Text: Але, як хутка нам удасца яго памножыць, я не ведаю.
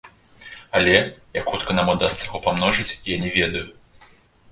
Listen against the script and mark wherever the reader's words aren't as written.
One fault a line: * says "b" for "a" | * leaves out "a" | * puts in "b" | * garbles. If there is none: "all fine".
all fine